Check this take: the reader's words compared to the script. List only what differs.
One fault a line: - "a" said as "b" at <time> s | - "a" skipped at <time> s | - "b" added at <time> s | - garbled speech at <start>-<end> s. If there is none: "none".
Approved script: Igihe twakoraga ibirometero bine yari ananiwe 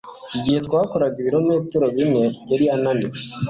none